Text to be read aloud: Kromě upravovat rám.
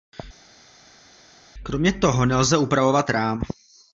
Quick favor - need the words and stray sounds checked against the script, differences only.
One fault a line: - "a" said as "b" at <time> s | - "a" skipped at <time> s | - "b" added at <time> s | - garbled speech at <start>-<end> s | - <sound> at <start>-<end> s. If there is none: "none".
- "toho nelze" added at 1.9 s